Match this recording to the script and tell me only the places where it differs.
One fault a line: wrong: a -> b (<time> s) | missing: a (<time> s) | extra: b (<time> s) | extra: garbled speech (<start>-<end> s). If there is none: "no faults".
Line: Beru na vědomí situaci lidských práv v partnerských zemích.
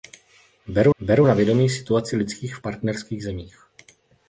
extra: beru (1.0 s)
missing: práv v (2.6 s)